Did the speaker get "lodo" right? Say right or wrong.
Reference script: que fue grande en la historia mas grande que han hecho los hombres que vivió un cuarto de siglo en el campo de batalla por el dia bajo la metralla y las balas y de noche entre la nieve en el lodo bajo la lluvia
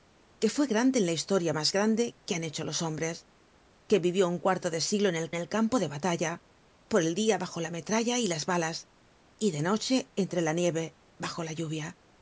wrong